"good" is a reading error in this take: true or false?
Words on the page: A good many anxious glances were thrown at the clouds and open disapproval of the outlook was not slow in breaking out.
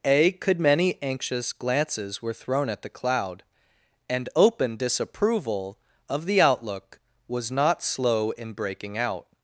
true